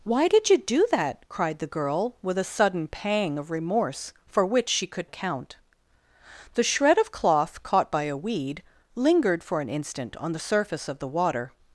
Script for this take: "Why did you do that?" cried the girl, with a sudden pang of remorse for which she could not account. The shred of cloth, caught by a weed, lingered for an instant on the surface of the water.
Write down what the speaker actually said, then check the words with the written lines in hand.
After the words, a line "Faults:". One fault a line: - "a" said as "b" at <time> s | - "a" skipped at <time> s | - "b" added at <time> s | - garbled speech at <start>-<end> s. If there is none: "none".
"Why did you do that?" cried the girl, with a sudden pang of remorse for which she could account. The shred of cloth, caught by a weed, lingered for an instant on the surface of the water.
Faults:
- "not" skipped at 5.1 s